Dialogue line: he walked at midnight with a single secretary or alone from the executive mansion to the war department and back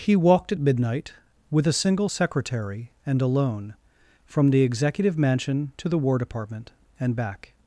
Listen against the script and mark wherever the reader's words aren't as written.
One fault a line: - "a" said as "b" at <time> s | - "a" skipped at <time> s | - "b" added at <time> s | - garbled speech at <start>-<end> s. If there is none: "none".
- "or" said as "and" at 3.0 s